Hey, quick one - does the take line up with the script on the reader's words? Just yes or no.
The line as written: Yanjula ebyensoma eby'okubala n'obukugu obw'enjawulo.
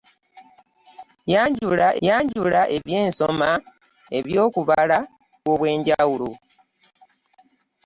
no